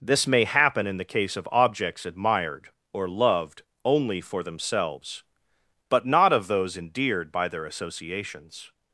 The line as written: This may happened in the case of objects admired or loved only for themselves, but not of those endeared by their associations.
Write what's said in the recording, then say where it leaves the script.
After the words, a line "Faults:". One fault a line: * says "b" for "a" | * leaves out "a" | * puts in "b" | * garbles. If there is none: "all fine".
This may happen in the case of objects admired or loved only for themselves, but not of those endeared by their associations.
Faults:
* says "happen" for "happened"